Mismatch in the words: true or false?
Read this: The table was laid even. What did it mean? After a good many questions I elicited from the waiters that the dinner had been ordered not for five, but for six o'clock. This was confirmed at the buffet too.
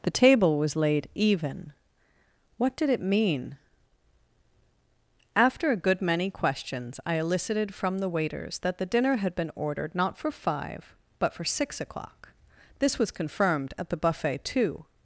false